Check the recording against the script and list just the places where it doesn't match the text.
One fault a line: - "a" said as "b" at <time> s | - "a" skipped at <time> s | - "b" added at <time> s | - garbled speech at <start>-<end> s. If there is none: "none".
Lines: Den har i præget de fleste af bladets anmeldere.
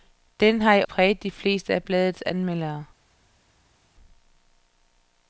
none